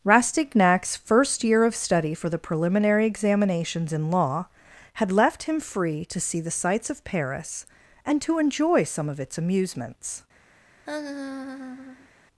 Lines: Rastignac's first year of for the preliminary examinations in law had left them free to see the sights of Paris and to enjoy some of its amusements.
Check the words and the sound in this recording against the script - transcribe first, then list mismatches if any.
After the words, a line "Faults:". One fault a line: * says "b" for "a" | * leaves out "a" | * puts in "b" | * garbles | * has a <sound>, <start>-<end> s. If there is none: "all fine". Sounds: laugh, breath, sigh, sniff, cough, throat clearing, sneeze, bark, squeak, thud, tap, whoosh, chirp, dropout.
Rastignac's first year of study for the preliminary examinations in law had left him free to see the sights of Paris and to enjoy some of its amusements.
Faults:
* puts in "study"
* says "him" for "them"
* has a laugh, 10.9-12.1 s